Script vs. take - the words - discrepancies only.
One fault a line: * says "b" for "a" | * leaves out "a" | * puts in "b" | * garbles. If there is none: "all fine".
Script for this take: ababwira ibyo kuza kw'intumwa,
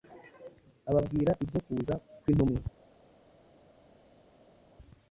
all fine